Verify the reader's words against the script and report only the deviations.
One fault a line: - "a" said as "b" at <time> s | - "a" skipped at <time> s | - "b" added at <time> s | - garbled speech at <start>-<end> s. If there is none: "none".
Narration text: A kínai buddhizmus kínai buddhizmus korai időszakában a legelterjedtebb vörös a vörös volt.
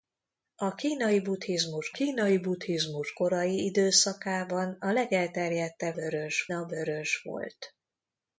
none